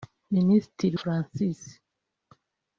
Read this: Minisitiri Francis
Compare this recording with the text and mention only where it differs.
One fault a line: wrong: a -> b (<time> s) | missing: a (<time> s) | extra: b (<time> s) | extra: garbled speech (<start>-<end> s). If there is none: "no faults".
no faults